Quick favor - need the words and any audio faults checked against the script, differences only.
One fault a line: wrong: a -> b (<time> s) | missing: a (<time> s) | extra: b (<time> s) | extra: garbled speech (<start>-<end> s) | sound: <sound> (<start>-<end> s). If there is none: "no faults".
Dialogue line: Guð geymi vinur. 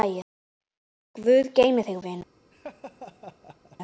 extra: þig (1.9 s)
sound: laugh (2.5-3.8 s)